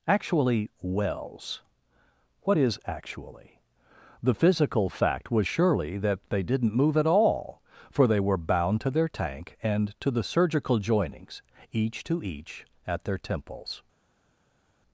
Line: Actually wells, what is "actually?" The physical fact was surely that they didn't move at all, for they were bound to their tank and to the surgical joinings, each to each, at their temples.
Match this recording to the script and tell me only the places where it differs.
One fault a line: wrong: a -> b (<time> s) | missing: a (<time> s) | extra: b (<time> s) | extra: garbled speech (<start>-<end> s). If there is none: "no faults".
no faults